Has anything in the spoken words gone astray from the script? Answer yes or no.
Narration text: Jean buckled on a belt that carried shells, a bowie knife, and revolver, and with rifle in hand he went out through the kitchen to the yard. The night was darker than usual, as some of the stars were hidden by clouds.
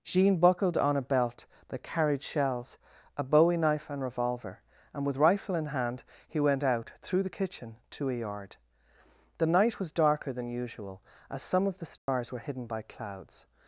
yes